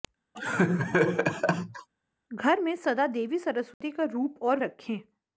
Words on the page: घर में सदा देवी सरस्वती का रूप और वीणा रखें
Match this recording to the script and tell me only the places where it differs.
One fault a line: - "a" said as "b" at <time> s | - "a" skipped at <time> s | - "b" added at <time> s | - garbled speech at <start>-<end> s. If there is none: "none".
- "वीणा" skipped at 4.6 s